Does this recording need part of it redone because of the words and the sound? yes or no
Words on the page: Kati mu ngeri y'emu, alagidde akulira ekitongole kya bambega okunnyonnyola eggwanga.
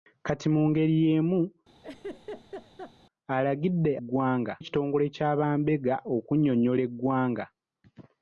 yes